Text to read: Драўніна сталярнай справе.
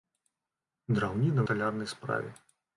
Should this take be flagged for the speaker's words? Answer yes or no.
no